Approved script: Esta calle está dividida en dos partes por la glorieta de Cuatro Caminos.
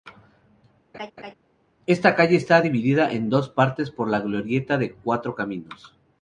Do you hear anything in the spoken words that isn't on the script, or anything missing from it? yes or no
no